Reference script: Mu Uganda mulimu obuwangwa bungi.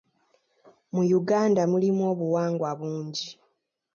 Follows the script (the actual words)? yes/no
yes